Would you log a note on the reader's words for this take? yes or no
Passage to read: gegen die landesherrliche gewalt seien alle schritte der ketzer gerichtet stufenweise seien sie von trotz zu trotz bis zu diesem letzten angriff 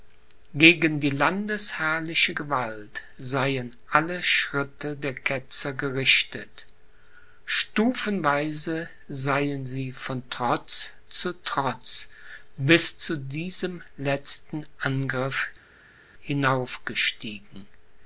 no